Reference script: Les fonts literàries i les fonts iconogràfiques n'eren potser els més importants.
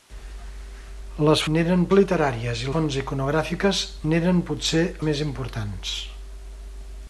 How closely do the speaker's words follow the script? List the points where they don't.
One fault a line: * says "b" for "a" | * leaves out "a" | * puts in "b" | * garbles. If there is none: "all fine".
* says "n'eren" for "fonts"
* leaves out "les"
* leaves out "els"